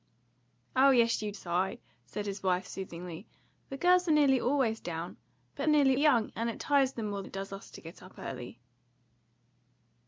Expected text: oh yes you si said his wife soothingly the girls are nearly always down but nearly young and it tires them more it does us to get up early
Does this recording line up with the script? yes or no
yes